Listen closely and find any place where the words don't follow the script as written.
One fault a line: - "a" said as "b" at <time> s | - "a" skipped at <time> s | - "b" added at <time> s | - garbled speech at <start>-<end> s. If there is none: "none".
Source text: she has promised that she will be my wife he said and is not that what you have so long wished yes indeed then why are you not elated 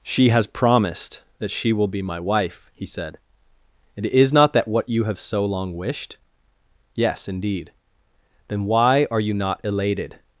none